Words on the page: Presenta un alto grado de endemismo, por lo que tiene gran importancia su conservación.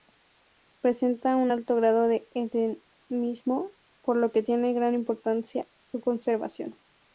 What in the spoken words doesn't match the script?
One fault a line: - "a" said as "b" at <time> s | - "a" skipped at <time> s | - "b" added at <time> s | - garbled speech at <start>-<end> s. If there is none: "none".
none